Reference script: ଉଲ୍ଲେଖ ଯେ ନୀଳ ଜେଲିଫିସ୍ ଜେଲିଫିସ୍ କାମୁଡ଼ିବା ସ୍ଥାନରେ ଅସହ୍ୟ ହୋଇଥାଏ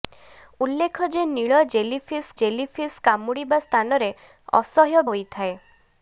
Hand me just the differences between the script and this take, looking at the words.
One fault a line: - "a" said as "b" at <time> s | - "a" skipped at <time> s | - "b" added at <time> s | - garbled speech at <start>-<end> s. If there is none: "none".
none